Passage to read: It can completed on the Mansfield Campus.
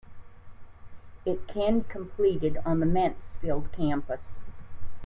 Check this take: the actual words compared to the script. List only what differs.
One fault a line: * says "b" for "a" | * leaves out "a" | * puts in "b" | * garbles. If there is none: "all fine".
all fine